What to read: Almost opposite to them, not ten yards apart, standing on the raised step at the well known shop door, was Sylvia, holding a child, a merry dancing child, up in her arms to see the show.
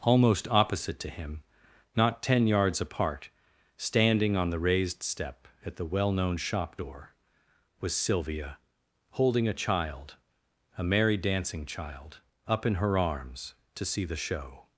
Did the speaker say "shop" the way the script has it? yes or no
yes